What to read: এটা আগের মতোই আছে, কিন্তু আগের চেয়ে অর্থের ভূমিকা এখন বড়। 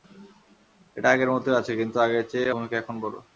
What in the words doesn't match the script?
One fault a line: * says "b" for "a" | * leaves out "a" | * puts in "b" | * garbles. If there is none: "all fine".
* leaves out "অর্থের"